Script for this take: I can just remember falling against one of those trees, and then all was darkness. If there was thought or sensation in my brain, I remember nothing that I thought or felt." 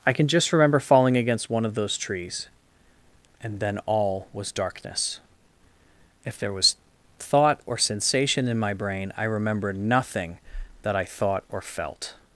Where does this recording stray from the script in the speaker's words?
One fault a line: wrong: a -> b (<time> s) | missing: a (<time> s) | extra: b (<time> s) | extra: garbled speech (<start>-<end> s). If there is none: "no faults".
no faults